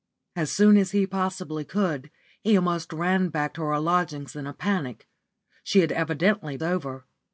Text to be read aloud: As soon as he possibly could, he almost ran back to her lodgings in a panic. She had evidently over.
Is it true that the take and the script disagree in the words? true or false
false